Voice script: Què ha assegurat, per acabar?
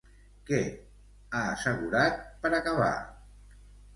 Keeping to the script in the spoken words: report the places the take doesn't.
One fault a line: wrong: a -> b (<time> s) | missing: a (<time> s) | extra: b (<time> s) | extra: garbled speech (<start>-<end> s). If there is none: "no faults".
no faults